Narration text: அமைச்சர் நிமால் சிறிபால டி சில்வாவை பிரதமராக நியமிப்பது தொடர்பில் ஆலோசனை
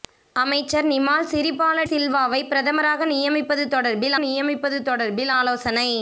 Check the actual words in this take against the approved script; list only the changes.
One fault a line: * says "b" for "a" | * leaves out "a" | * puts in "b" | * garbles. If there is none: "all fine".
* leaves out "டி"
* puts in "நியமிப்பது தொடர்பில்"